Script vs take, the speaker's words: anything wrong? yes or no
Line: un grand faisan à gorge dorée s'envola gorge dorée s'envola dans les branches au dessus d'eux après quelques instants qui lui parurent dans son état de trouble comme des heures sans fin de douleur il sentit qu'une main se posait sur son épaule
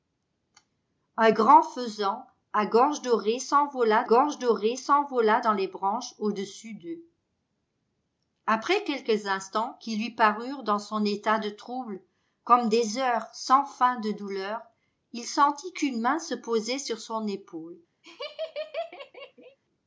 no